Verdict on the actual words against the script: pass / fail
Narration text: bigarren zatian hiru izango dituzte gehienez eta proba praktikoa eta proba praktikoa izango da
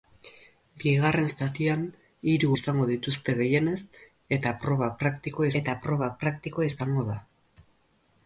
pass